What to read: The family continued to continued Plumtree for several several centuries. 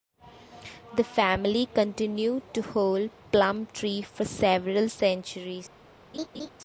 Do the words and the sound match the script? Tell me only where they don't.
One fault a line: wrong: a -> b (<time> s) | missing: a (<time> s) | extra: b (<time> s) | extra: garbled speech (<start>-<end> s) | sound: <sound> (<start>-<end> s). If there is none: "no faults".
wrong: continued -> hold (2.6 s)
missing: several (4.9 s)
sound: laugh (6.1-6.5 s)